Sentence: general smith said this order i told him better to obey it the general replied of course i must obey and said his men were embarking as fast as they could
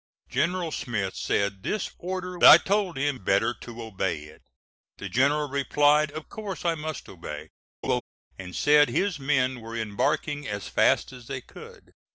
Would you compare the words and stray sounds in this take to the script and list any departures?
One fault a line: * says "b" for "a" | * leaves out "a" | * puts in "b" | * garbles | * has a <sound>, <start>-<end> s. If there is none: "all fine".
* has a laugh, 7.8-8.0 s